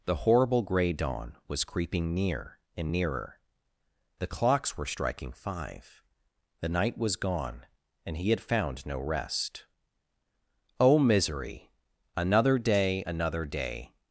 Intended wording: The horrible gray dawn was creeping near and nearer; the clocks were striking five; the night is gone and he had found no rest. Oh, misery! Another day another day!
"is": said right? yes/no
no